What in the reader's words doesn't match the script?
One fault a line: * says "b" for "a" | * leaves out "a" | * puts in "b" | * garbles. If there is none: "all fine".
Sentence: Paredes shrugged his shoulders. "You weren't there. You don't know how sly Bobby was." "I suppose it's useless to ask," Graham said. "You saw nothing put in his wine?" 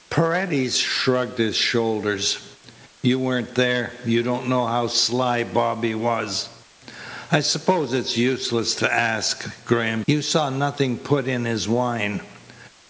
* leaves out "said"